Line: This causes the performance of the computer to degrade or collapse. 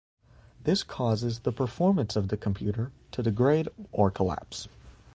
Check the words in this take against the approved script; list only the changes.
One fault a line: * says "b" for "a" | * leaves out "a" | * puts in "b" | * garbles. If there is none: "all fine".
all fine